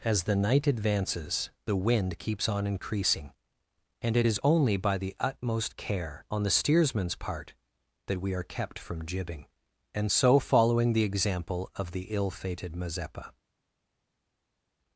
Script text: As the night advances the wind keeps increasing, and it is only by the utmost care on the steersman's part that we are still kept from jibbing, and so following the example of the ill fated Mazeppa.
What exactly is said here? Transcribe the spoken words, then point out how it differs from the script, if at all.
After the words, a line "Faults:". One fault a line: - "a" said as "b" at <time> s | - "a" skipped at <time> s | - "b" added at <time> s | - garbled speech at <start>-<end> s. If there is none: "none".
As the night advances the wind keeps on increasing, and it is only by the utmost care on the steersman's part that we are kept from jibbing, and so following the example of the ill fated Mazeppa.
Faults:
- "on" added at 2.5 s
- "still" skipped at 8.4 s